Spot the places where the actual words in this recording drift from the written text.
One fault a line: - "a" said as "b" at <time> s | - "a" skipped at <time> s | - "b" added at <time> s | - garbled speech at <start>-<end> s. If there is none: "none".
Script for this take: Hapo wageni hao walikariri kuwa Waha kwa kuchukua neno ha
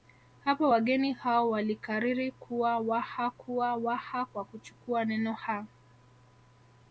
- "kuwa Waha" added at 3.3 s